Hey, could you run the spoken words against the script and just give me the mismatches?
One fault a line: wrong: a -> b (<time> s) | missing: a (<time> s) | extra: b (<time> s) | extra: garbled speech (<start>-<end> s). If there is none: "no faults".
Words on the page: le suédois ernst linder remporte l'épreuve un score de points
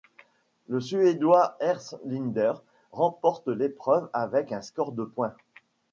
extra: avec (4.1 s)